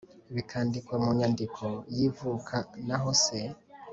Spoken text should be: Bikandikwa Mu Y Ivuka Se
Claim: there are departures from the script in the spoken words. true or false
true